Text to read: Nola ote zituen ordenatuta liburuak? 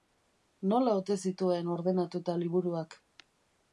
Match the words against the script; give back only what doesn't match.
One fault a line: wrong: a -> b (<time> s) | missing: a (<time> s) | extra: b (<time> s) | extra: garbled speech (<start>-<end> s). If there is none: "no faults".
no faults